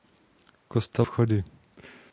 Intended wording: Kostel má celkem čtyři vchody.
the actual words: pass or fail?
fail